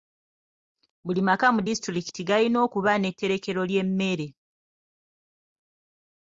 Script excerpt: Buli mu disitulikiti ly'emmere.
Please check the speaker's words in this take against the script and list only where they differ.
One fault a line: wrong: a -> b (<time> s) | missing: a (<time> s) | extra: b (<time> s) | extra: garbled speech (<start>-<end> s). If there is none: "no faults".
extra: maka (1.3 s)
extra: galina okuba n'etterekero (2.3 s)